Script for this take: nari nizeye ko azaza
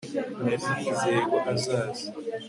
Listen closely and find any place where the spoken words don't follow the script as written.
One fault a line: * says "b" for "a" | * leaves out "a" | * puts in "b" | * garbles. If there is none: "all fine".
all fine